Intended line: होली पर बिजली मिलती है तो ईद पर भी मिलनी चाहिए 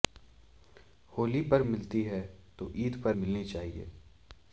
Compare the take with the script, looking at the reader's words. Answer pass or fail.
fail